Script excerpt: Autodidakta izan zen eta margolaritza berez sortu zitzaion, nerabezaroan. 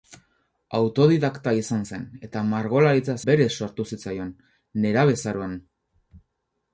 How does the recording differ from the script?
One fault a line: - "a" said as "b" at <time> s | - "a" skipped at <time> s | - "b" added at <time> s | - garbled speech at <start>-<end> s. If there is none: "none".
none